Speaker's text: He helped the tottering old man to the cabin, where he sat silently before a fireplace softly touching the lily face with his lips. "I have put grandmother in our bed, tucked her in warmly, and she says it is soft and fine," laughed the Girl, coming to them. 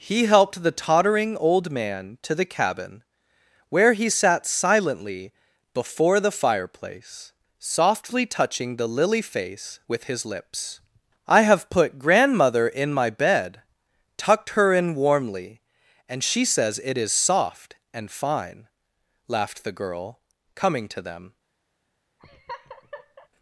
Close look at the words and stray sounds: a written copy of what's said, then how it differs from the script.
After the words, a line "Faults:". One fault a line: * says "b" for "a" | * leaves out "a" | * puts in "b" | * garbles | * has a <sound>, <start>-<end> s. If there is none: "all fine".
He helped the tottering old man to the cabin, where he sat silently before the fireplace softly touching the lily face with his lips. "I have put grandmother in my bed, tucked her in warmly, and she says it is soft and fine," laughed the Girl, coming to them.
Faults:
* says "the" for "a"
* says "my" for "our"
* has a laugh, 22.2-23.3 s